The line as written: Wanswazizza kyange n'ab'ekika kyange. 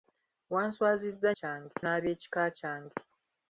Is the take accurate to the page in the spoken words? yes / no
yes